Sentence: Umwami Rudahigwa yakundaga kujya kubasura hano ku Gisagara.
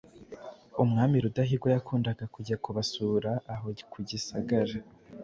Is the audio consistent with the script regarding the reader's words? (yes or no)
no